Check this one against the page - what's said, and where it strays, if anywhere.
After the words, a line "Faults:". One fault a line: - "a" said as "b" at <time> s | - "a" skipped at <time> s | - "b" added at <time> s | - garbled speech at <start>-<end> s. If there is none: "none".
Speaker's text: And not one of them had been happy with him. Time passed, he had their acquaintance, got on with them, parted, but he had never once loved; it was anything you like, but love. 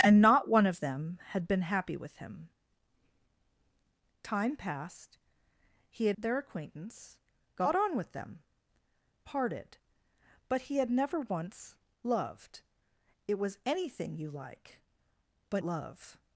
And not one of them had been happy with him. Time passed, he had their acquaintance, got on with them, parted, but he had never once loved; it was anything you like, but love.
Faults:
none